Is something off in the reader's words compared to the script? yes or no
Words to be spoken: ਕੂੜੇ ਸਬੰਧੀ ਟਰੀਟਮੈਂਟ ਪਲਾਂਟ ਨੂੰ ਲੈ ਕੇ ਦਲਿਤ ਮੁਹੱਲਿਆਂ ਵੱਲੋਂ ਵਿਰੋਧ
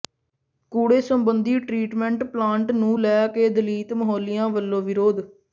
no